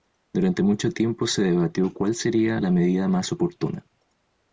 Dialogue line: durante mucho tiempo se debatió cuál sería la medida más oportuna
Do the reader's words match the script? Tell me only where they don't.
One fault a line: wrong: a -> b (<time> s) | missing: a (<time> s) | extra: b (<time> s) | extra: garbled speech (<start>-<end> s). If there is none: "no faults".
no faults